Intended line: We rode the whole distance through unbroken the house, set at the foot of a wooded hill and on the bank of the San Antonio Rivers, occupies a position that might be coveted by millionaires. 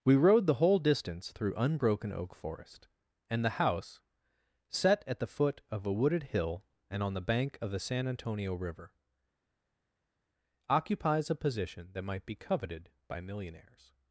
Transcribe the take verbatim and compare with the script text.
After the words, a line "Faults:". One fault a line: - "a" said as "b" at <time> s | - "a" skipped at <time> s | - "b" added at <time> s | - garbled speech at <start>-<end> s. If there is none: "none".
We rode the whole distance through unbroken oak forest, and the house, set at the foot of a wooded hill and on the bank of the San Antonio River, occupies a position that might be coveted by millionaires.
Faults:
- "oak forest and" added at 2.1 s
- "Rivers" said as "River" at 8.6 s